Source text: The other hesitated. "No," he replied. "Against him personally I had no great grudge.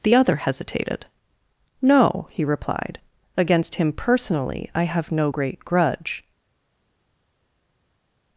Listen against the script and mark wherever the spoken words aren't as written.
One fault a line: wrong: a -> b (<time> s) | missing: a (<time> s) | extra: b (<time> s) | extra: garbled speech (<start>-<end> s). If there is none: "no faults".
wrong: had -> have (4.8 s)